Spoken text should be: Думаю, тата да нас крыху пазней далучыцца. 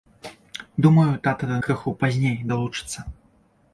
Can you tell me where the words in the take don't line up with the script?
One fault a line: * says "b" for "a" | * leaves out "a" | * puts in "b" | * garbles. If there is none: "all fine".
* leaves out "нас"